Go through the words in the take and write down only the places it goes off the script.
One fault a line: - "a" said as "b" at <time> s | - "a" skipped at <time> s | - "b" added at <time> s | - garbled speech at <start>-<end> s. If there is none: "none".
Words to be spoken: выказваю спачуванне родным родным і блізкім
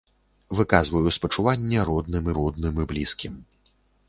none